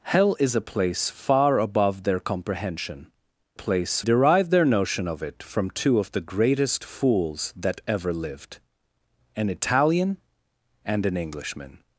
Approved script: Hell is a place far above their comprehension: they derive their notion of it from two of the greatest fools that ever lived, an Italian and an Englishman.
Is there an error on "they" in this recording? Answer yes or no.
yes